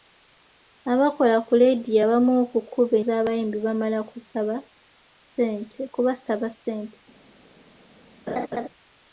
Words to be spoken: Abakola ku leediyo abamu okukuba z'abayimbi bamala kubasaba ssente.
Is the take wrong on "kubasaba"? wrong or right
right